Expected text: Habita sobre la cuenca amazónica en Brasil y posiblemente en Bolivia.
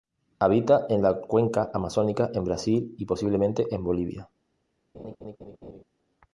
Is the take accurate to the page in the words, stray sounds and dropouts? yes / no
no